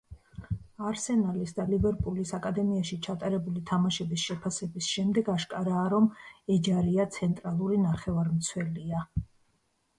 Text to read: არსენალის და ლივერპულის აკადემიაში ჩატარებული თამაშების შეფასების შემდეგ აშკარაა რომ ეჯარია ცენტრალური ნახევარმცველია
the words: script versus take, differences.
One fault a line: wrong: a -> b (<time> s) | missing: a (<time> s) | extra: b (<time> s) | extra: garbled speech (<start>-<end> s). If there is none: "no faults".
no faults